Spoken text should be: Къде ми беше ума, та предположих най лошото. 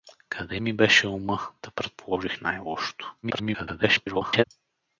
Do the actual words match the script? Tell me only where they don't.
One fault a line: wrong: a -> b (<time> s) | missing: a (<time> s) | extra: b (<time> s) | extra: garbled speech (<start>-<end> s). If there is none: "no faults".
extra: garbled speech (3.2-4.4 s)